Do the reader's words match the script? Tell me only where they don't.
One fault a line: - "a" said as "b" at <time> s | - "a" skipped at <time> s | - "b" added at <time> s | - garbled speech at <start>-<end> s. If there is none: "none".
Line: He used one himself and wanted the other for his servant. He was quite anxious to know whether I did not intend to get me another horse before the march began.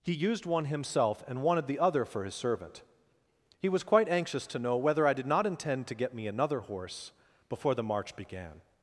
none